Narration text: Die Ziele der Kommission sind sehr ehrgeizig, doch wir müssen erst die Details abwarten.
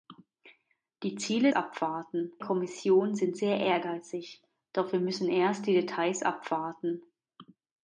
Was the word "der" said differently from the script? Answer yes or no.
yes